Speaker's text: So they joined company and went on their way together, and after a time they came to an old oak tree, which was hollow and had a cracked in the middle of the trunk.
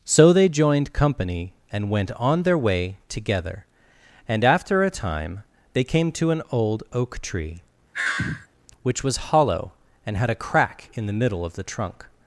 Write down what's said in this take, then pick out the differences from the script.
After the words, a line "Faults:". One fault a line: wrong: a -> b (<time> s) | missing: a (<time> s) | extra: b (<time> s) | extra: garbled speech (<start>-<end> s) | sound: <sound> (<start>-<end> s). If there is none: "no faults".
So they joined company and went on their way together, and after a time they came to an old oak tree, which was hollow and had a crack in the middle of the trunk.
Faults:
sound: sigh (7.9-8.5 s)
wrong: cracked -> crack (10.4 s)